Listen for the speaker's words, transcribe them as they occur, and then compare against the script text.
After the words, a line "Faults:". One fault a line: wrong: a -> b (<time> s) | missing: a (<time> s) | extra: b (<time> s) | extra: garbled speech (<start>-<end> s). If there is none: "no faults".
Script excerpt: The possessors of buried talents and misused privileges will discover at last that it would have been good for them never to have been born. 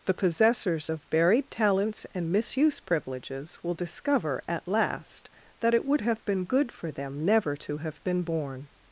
The possessors of buried talents and misuse privileges will discover at last that it would have been good for them never to have been born.
Faults:
wrong: misused -> misuse (2.3 s)